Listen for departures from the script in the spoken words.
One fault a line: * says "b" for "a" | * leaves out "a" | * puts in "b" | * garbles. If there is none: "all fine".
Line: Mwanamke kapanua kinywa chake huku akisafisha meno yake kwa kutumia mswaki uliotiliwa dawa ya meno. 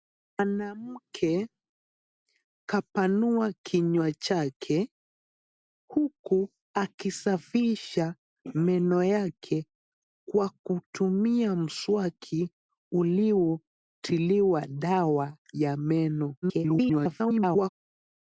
* garbles